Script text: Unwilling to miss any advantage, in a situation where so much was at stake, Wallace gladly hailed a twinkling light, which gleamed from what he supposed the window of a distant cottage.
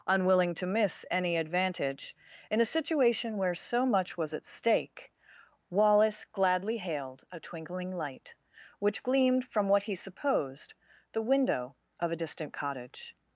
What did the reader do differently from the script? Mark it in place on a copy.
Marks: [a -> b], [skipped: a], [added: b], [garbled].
Unwilling to miss any advantage, in a situation where so much was at stake, Wallace gladly hailed a twinkling light, which gleamed from what he supposed the window of a distant cottage.